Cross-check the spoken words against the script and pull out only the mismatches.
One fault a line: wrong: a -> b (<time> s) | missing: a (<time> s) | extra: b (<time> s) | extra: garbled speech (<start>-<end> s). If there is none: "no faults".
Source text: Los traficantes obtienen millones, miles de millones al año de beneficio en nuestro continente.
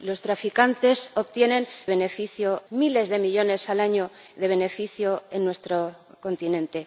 wrong: millones -> beneficio (1.9 s)